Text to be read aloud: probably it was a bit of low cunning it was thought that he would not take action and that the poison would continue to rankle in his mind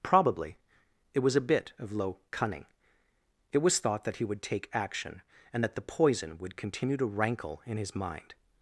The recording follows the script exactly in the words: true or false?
false